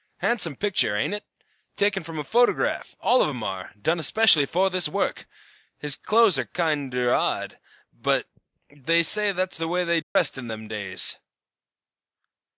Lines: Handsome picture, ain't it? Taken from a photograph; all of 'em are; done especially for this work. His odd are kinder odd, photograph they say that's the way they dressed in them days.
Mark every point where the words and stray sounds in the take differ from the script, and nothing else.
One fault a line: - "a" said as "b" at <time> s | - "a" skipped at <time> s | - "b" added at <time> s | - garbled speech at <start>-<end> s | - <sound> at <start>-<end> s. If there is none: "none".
- "odd" said as "clothes" at 6.0 s
- "photograph" said as "but" at 7.9 s
- dropout at 10.0-10.2 s